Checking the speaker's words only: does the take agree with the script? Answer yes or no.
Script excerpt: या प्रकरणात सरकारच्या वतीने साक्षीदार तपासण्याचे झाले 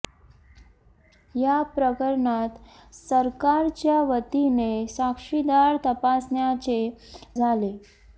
yes